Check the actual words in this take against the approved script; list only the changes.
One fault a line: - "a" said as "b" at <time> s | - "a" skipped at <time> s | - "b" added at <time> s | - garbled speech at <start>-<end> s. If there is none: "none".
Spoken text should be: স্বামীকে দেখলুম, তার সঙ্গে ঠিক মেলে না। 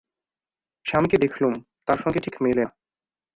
none